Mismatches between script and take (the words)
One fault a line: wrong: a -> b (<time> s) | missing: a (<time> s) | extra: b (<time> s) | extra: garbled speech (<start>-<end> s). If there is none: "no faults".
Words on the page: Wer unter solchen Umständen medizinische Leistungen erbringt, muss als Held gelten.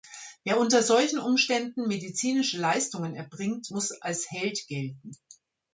no faults